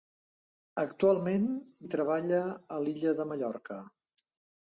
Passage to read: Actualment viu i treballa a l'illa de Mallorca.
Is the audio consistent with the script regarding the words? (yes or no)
no